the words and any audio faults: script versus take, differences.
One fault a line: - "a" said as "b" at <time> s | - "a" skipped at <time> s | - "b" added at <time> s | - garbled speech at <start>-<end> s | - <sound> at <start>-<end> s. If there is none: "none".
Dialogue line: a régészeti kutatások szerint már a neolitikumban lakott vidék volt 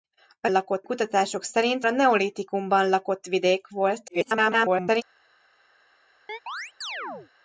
- "régészeti" said as "lakott" at 0.5 s
- "már" skipped at 1.9 s
- garbled speech at 4.1-5.0 s
- chirp at 6.3-7.3 s